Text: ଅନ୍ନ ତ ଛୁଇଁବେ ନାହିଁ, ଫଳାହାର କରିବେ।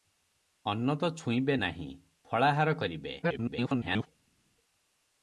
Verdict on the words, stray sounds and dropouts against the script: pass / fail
fail